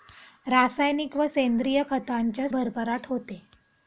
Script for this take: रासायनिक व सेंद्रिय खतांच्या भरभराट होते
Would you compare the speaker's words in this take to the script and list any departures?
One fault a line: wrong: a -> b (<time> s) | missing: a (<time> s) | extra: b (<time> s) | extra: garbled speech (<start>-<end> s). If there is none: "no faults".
no faults